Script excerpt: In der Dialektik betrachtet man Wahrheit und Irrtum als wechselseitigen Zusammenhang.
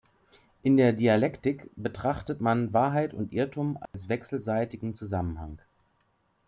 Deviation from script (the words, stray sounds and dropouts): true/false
true